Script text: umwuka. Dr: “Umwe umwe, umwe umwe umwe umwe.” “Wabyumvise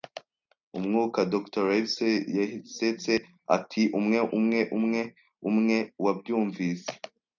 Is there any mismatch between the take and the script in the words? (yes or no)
yes